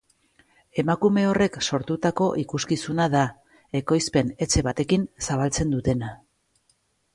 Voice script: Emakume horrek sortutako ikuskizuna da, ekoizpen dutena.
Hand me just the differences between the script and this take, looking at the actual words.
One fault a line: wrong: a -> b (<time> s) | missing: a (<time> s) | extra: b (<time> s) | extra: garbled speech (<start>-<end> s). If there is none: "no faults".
extra: etxe batekin zabaltzen (4.5 s)